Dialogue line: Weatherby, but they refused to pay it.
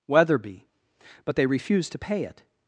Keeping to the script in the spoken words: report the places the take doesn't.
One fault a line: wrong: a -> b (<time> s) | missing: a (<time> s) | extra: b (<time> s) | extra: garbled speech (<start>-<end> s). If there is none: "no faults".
no faults